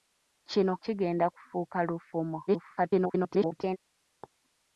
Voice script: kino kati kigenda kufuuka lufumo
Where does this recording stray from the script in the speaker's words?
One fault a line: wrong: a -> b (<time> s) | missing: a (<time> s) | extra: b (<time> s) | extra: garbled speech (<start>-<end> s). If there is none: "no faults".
missing: kati (0.7 s)
extra: garbled speech (2.5-3.8 s)